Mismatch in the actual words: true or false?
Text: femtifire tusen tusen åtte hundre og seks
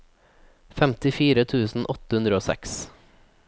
true